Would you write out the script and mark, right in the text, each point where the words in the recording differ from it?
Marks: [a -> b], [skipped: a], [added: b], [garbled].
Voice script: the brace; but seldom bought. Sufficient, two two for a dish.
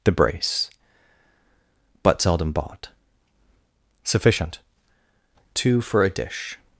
the brace; but seldom bought. Sufficient, two [skipped: two] for a dish.